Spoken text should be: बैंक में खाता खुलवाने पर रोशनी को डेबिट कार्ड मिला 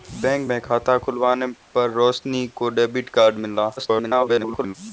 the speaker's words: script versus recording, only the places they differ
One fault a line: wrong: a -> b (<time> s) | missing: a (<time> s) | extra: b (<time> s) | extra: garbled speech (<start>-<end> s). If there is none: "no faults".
extra: garbled speech (3.8-4.7 s)